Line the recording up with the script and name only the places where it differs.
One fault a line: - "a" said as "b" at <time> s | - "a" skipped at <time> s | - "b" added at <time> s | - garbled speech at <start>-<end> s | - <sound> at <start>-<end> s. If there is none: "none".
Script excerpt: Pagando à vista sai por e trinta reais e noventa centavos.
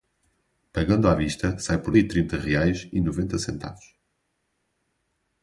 none